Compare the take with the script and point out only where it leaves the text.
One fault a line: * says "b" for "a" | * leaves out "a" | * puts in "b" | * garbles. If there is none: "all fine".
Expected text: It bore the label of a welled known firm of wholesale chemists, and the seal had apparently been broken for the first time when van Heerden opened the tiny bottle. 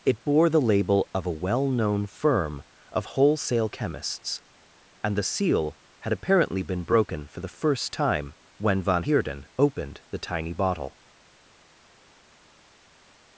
* says "well" for "welled"